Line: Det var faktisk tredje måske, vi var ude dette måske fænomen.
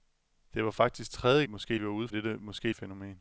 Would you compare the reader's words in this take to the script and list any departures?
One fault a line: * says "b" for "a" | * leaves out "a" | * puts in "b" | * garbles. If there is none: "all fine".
all fine